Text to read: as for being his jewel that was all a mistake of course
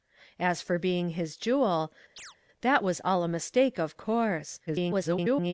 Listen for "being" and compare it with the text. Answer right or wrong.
right